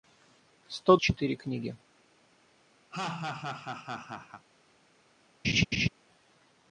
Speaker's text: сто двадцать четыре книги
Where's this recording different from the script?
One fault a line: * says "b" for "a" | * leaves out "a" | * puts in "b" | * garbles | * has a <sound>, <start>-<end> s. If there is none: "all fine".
* leaves out "двадцать"
* has a laugh, 2.9-4.5 s
* has a laugh, 5.4-5.9 s